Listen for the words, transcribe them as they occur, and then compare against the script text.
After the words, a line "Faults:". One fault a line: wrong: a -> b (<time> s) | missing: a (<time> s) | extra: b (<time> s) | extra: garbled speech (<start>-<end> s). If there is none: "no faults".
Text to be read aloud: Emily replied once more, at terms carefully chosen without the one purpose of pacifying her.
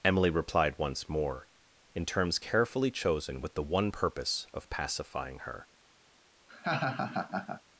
Emily replied once more, in terms carefully chosen with the one purpose of pacifying her.
Faults:
wrong: at -> in (1.9 s)
wrong: without -> with (3.4 s)